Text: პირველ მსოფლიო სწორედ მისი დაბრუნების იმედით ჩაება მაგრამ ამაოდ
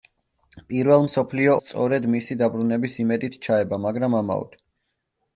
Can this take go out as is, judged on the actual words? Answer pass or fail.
pass